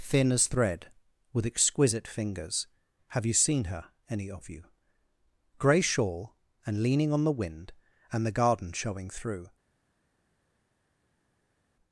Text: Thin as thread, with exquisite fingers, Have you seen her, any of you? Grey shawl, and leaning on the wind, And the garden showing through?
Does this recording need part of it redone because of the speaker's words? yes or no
no